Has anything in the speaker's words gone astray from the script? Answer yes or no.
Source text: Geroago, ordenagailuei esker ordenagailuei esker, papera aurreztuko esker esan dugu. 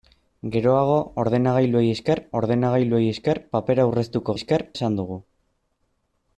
no